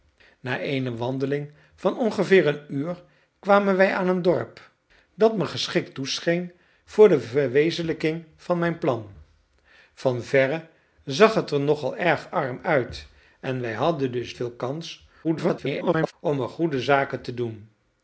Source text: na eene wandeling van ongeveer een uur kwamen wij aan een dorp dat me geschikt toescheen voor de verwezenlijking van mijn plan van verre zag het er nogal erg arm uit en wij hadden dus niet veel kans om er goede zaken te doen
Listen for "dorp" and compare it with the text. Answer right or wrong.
right